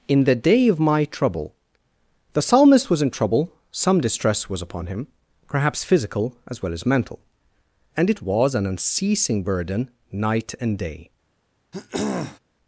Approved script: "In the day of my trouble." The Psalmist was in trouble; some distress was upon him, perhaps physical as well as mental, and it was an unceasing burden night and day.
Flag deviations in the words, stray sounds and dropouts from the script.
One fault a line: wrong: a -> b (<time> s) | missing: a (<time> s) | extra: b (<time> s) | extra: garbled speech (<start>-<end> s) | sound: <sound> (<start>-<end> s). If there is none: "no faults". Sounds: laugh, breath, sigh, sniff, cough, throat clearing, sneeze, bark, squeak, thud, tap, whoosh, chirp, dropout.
sound: throat clearing (11.7-12.4 s)